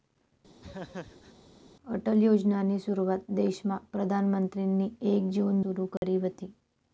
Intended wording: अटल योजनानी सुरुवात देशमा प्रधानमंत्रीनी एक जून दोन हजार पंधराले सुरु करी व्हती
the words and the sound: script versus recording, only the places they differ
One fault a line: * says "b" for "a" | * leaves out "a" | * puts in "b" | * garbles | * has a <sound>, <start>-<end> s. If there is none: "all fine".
* has a laugh, 0.6-1.3 s
* leaves out "दोन हजार पंधराले"
* has a dropout, 6.0-6.0 s